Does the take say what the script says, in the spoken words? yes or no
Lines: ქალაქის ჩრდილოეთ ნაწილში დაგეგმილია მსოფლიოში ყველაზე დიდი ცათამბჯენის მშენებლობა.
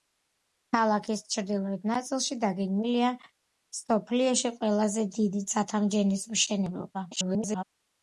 no